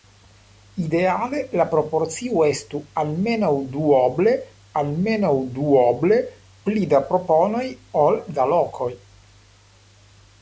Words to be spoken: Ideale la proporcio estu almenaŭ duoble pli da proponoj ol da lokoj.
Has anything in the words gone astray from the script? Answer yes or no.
yes